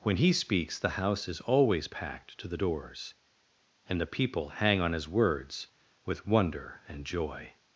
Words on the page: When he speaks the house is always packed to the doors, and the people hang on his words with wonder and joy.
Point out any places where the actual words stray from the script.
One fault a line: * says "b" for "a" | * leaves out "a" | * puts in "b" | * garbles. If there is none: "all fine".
all fine